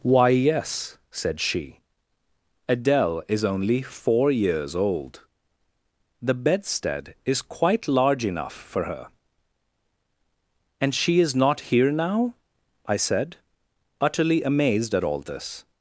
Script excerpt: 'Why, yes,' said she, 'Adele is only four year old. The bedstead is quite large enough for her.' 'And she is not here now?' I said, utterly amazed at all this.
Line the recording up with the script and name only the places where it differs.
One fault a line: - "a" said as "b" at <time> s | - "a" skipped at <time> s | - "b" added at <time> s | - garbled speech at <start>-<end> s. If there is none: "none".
- "year" said as "years" at 4.3 s